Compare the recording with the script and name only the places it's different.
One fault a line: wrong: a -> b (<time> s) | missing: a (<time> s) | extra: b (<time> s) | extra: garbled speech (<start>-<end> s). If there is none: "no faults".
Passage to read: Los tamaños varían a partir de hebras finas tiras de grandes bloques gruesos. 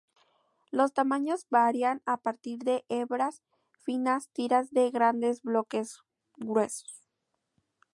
no faults